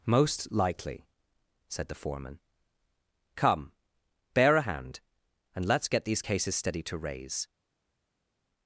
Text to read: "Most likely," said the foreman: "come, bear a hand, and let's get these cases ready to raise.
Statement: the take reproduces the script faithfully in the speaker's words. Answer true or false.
false